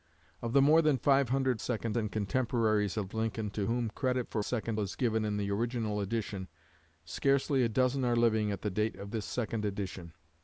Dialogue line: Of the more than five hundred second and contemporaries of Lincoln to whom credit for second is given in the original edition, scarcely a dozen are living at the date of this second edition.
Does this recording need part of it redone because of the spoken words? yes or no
no